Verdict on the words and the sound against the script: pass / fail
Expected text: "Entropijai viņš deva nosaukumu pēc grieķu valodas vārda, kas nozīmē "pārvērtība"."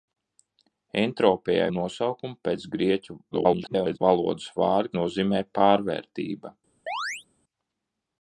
fail